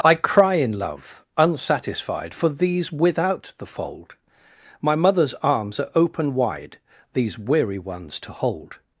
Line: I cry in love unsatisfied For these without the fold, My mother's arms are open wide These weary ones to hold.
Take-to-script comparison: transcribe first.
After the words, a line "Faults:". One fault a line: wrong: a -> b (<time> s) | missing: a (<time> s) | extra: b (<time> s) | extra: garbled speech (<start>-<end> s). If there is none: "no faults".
I cry in love unsatisfied For these without the fold, My mother's arms are open wide These weary ones to hold.
Faults:
no faults